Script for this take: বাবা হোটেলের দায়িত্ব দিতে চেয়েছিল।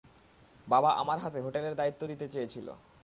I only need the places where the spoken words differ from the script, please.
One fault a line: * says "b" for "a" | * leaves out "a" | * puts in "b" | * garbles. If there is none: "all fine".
* puts in "আমার হাতে"